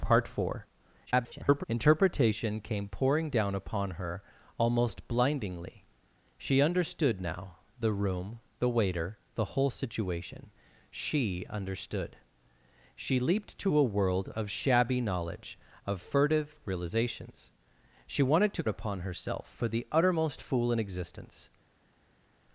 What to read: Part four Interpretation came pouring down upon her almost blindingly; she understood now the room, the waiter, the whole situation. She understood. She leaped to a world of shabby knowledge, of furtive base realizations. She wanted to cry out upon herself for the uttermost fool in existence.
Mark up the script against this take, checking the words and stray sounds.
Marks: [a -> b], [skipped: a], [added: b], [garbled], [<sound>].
Part four [garbled] Interpretation came pouring down upon her almost blindingly; she understood now the room, the waiter, the whole situation. She understood. She leaped to a world of shabby knowledge, of furtive [skipped: base] realizations. She wanted to [skipped: cry out] upon herself for the uttermost fool in existence.